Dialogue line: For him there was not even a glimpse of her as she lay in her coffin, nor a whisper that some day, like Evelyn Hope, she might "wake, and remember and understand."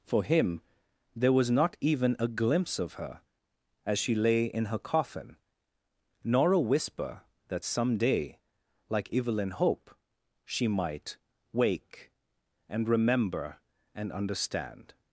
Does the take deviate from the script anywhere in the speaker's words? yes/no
no